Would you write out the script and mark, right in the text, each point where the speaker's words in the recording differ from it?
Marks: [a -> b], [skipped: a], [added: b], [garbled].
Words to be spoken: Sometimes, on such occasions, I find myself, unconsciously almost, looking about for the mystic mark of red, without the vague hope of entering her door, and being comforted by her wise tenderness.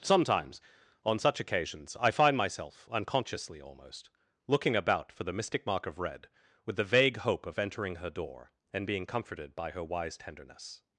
Sometimes, on such occasions, I find myself, unconsciously almost, looking about for the mystic mark of red, [without -> with] the vague hope of entering her door, and being comforted by her wise tenderness.